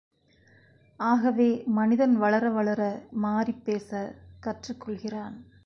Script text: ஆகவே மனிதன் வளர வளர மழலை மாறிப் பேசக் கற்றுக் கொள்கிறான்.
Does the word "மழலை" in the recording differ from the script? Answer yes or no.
yes